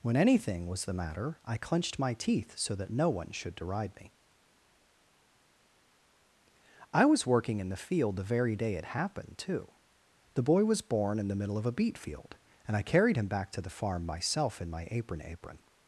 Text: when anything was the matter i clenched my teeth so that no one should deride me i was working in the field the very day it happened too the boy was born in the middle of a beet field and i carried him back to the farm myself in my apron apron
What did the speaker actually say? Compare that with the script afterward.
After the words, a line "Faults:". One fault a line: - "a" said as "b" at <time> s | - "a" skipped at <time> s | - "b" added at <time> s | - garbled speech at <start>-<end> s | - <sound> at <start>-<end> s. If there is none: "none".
when anything was the matter i clenched my teeth so that no one should deride me i was working in the field the very day it happened too the boy was born in the middle of a beet field and i carried him back to the farm myself in my apron apron
Faults:
none